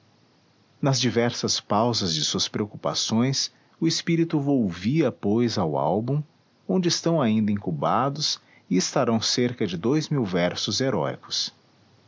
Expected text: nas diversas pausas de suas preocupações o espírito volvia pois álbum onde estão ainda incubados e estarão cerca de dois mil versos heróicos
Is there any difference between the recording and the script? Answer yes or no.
yes